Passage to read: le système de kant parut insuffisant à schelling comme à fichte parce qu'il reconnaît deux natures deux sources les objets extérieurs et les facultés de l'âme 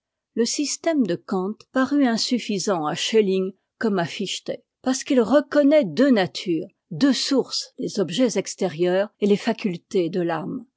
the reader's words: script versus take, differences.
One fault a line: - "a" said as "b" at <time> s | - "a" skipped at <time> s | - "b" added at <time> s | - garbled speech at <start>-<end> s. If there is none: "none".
none